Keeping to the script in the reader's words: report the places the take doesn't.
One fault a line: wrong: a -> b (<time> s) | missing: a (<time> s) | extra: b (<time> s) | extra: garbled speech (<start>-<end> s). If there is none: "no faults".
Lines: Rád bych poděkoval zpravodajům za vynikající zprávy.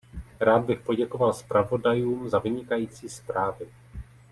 no faults